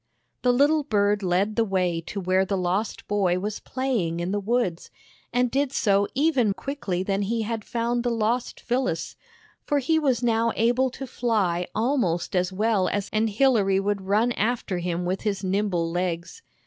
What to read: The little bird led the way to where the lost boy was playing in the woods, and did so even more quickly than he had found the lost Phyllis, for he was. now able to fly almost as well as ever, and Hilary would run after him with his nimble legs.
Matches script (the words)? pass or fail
fail